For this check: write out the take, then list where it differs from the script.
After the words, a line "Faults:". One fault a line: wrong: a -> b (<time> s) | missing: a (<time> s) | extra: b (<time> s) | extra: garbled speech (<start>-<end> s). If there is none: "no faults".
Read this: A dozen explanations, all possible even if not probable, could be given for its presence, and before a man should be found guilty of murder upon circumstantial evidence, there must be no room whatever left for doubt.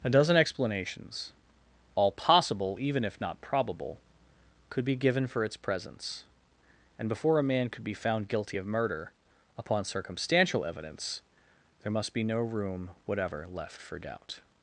A dozen explanations, all possible even if not probable, could be given for its presence, and before a man could be found guilty of murder upon circumstantial evidence, there must be no room whatever left for doubt.
Faults:
wrong: should -> could (7.7 s)